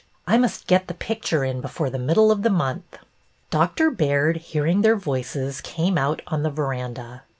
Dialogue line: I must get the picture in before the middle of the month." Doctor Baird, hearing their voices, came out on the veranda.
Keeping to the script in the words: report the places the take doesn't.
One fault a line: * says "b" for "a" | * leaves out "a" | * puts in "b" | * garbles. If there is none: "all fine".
all fine